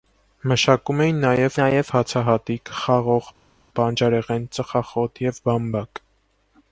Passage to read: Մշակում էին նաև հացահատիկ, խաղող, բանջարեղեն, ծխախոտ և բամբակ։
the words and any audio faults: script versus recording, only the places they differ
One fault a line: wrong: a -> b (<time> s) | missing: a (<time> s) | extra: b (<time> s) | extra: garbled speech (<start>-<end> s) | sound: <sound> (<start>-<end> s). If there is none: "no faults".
extra: նաև (1.6 s)